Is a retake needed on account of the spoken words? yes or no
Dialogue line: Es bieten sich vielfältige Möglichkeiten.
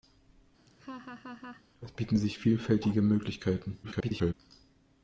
yes